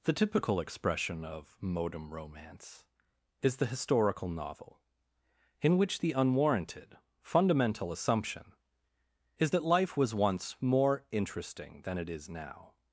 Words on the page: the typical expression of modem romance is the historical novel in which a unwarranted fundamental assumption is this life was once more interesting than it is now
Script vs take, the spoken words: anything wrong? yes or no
yes